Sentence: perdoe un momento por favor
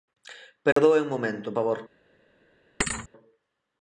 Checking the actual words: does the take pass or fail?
fail